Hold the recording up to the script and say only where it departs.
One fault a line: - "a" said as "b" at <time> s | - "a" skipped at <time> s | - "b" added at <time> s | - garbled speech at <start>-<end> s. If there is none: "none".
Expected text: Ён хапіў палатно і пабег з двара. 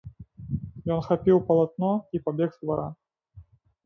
none